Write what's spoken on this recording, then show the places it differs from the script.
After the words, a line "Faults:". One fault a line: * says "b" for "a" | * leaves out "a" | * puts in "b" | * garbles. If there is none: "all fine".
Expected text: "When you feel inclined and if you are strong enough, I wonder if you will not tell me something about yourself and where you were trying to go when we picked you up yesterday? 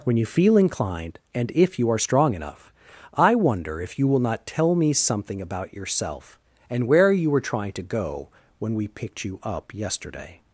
"When you feel inclined and if you are strong enough, I wonder if you will not tell me something about yourself and where you were trying to go when we picked you up yesterday?
Faults:
all fine